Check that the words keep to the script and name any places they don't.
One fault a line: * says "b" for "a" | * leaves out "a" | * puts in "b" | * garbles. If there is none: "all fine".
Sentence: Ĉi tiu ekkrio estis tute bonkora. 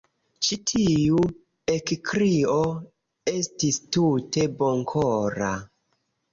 all fine